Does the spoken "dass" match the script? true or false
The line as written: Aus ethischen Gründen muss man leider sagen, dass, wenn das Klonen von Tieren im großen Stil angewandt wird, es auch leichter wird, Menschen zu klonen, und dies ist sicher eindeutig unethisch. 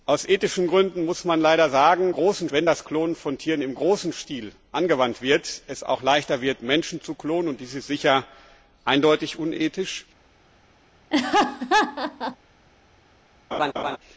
false